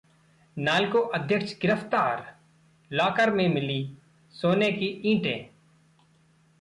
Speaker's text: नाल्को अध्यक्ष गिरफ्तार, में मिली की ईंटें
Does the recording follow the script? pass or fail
fail